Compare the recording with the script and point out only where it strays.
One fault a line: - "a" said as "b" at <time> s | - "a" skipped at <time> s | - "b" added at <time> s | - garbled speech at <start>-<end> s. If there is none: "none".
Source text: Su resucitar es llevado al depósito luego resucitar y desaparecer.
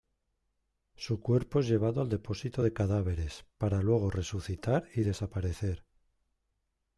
- "resucitar" said as "cuerpo" at 1.2 s
- "de cadáveres para" added at 2.6 s